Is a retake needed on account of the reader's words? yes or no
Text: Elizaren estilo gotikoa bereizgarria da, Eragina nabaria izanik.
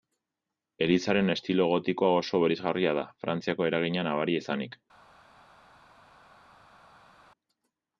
yes